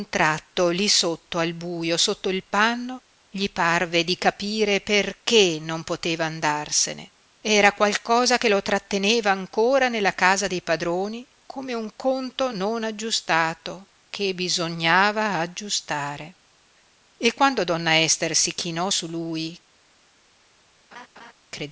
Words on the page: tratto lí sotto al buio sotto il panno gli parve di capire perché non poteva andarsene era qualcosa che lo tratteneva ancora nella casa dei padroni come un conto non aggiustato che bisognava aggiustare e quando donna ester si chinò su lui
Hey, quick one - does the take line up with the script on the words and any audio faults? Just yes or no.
no